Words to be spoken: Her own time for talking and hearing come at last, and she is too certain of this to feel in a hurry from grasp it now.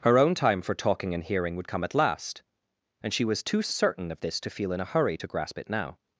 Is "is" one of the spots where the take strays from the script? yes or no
yes